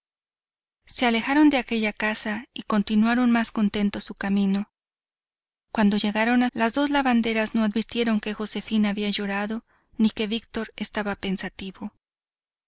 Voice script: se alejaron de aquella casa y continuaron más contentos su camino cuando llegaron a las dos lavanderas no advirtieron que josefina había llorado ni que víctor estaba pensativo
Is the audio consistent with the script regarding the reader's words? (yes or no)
yes